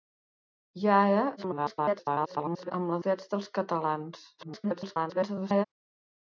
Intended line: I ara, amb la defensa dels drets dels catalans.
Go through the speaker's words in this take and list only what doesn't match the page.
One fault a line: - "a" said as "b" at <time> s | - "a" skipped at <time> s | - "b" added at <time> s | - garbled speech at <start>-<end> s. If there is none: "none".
- garbled speech at 1.4-2.7 s
- "defensa dels" skipped at 3.0 s
- garbled speech at 4.4-5.6 s